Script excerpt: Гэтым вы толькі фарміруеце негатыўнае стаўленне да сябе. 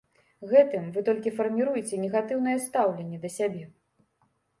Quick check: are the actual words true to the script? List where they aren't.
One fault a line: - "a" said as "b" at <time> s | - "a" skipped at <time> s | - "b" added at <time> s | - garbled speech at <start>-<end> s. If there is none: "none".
none